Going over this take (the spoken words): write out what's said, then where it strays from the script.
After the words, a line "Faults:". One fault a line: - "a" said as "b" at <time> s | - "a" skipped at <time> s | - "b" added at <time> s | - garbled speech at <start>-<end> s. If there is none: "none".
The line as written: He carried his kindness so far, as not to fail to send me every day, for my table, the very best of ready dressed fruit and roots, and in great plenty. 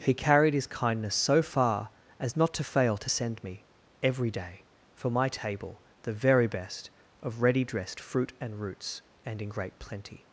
He carried his kindness so far, as not to fail to send me every day, for my table, the very best of ready dressed fruit and roots, and in great plenty.
Faults:
none